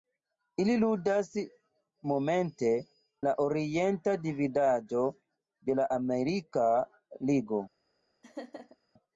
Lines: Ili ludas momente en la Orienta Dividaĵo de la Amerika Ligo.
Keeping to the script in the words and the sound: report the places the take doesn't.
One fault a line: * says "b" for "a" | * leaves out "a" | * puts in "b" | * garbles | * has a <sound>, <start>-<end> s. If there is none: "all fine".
* leaves out "en"
* has a laugh, 8.2-8.8 s